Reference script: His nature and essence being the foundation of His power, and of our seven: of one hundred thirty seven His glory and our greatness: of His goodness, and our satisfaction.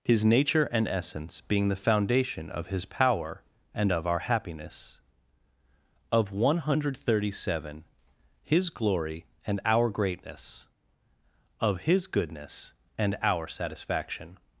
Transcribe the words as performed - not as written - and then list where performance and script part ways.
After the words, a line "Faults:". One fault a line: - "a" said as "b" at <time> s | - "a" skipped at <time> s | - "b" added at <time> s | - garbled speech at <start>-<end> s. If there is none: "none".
His nature and essence being the foundation of His power, and of our happiness: of one hundred thirty seven His glory and our greatness: of His goodness, and our satisfaction.
Faults:
- "seven" said as "happiness" at 4.2 s